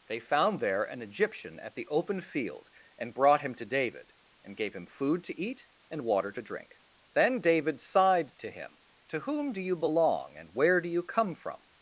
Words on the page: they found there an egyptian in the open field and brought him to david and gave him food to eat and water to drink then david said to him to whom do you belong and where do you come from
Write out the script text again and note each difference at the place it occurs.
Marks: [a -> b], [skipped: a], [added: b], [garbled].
they found there an egyptian [in -> at] the open field and brought him to david and gave him food to eat and water to drink then david [said -> sighed] to him to whom do you belong and where do you come from